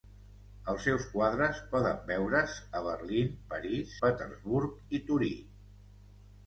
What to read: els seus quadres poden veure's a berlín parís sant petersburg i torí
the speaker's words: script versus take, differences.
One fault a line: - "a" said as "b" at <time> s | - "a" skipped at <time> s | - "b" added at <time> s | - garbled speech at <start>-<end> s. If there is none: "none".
- "sant" skipped at 3.9 s